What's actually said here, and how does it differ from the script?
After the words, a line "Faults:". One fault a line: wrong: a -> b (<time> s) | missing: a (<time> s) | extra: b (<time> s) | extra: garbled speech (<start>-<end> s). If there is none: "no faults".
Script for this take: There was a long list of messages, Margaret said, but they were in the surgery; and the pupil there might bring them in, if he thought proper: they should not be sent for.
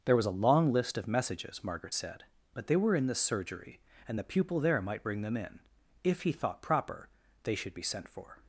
There was a long list of messages, Margaret said, but they were in the surgery; and the pupil there might bring them in, if he thought proper: they should be sent for.
Faults:
missing: not (7.7 s)